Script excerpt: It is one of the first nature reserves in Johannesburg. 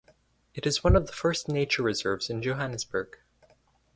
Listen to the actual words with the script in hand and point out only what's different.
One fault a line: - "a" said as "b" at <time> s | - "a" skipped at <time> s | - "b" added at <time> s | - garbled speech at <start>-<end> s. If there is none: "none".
none